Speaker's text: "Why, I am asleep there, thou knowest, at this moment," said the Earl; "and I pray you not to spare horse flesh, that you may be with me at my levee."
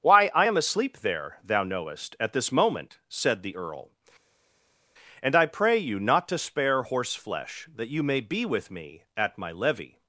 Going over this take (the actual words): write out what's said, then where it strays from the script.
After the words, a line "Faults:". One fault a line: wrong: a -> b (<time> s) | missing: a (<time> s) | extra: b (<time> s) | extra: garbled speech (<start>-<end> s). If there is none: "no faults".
"Why, I am asleep there, thou knowest, at this moment," said the Earl; "and I pray you not to spare horse flesh, that you may be with me at my levee."
Faults:
no faults